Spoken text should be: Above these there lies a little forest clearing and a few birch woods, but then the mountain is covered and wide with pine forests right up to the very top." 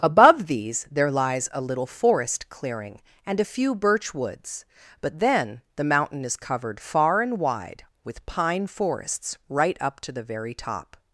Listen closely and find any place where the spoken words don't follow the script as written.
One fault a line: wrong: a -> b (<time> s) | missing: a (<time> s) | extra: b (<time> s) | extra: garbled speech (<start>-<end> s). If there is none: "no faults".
extra: far (6.8 s)